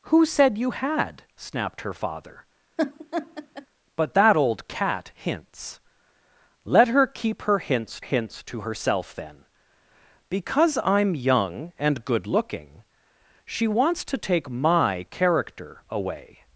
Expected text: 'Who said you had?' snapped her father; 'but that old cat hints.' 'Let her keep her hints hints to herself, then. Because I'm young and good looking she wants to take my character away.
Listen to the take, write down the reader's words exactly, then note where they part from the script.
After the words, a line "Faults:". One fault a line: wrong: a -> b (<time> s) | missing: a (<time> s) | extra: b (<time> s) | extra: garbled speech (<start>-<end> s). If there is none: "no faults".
'Who said you had?' snapped her father; 'but that old cat hints.' 'Let her keep her hints hints to herself, then. Because I'm young and good looking she wants to take my character away.
Faults:
no faults